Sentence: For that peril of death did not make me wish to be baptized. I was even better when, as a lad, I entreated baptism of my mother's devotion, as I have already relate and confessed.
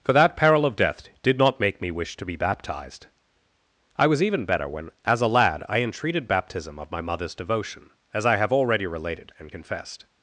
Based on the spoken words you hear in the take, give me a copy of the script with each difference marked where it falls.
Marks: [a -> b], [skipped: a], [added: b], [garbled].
For that peril of death did not make me wish to be baptized. I was even better when, as a lad, I entreated baptism of my mother's devotion, as I have already [relate -> related] and confessed.